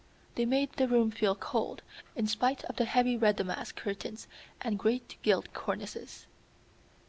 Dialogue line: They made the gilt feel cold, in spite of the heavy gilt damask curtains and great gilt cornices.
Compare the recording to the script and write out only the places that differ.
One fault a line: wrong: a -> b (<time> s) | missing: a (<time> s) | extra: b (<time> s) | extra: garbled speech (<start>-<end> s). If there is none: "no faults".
wrong: gilt -> room (0.9 s)
wrong: gilt -> red (3.2 s)